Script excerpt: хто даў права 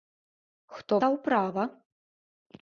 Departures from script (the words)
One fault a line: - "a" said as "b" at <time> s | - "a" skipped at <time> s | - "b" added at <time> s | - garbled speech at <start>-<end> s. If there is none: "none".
none